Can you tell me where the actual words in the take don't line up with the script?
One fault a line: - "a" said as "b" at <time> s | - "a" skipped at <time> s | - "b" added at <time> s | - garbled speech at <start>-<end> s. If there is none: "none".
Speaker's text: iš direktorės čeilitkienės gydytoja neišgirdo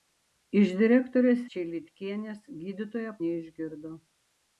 none